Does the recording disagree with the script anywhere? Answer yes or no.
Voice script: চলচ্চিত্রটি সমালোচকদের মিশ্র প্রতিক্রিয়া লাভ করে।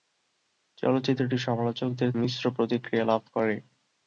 no